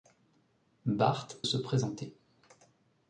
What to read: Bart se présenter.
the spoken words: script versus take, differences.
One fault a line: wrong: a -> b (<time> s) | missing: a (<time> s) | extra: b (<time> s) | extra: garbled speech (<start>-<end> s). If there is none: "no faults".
no faults